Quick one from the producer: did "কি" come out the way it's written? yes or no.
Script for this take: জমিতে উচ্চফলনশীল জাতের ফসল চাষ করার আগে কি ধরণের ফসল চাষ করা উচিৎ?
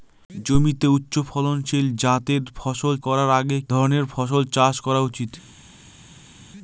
no